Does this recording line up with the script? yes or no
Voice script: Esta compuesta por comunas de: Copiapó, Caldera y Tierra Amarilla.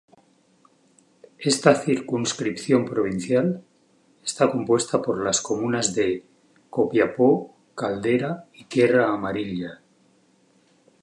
no